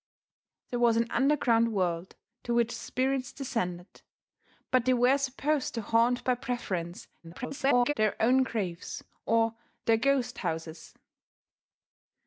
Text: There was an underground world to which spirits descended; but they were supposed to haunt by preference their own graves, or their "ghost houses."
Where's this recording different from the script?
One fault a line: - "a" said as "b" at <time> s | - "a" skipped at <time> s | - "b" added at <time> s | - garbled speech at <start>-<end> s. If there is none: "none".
- garbled speech at 7.2-7.9 s